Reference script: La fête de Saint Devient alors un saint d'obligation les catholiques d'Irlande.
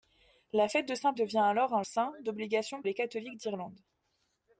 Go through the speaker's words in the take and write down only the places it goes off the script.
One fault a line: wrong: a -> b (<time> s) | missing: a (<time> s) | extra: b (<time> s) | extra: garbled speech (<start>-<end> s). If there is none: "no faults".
no faults